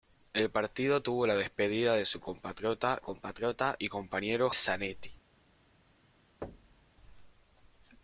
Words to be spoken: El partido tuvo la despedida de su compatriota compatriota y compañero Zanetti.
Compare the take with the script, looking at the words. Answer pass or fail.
pass